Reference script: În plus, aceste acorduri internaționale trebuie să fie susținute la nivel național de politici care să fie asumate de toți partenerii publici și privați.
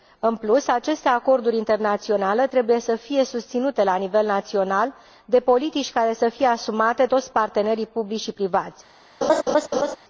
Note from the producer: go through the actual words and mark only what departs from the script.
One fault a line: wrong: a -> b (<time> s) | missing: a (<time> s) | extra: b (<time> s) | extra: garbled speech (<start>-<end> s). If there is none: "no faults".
missing: de (7.0 s)